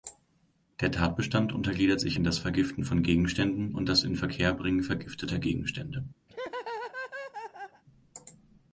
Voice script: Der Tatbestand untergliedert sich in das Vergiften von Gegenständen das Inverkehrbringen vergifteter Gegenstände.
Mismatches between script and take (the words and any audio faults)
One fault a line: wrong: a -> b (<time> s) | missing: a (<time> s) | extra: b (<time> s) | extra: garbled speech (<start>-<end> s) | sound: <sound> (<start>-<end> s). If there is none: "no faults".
extra: und (3.7 s)
sound: laugh (6.3-7.8 s)